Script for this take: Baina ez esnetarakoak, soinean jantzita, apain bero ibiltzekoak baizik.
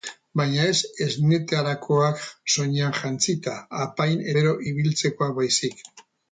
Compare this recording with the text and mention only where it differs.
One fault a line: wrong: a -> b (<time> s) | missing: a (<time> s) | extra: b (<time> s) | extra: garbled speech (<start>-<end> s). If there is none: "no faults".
no faults